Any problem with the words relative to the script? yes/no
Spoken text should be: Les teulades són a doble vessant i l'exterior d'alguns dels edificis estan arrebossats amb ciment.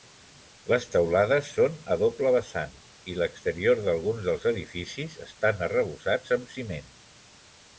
no